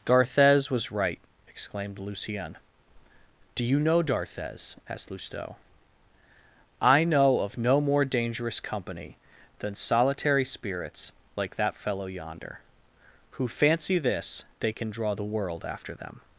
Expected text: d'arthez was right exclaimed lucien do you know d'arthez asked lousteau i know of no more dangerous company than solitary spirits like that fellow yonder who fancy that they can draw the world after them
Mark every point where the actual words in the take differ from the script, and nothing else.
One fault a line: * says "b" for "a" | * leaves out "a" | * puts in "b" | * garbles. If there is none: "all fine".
* says "this" for "that"